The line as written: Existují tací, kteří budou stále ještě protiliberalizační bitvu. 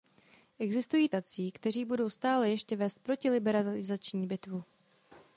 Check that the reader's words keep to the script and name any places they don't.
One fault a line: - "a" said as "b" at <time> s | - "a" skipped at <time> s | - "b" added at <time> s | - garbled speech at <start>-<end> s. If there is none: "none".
- "vést" added at 2.8 s